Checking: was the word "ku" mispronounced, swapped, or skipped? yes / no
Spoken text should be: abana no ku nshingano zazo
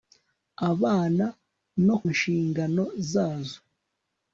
yes